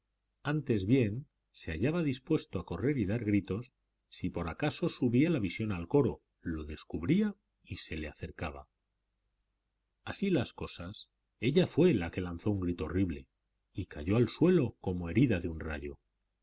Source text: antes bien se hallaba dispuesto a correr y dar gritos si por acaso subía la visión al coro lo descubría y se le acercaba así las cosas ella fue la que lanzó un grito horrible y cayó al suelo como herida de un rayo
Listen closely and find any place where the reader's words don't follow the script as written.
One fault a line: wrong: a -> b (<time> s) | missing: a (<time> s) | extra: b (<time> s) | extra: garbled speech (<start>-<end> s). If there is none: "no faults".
no faults